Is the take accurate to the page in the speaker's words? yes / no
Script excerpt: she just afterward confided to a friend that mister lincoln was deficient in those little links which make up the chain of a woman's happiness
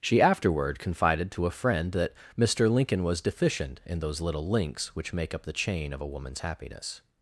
no